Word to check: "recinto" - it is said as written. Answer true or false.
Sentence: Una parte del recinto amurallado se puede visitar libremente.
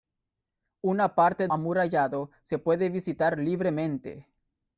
false